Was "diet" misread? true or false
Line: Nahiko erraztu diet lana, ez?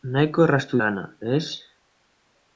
true